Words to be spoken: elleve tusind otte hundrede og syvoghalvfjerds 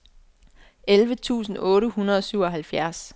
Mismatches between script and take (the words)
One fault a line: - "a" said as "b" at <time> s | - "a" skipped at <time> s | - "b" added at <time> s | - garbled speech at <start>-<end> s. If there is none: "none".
none